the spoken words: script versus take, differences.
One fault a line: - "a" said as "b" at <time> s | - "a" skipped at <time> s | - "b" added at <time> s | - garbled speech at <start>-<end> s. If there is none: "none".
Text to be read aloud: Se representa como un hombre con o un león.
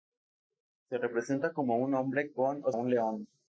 none